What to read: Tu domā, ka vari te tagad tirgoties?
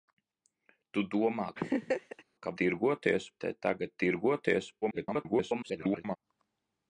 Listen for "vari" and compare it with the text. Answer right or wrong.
wrong